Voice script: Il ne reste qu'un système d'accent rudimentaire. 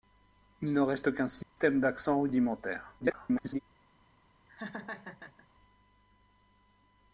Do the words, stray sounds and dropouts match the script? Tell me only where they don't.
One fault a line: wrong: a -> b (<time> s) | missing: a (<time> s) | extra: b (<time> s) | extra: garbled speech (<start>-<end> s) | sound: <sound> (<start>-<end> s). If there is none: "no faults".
sound: dropout (1.4-1.6 s)
extra: garbled speech (3.0-3.6 s)
sound: laugh (4.5-5.5 s)